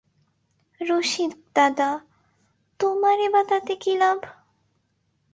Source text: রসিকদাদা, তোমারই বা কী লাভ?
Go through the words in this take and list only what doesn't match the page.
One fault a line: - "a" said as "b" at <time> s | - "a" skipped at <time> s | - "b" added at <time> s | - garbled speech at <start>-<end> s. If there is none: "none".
- "তাতে" added at 3.4 s